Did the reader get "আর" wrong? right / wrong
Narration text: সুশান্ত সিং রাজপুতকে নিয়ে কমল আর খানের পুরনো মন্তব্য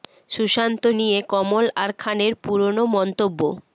right